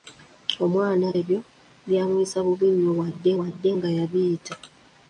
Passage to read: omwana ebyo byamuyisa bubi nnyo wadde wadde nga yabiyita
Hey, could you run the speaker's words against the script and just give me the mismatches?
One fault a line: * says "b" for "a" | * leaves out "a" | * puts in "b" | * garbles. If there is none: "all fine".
all fine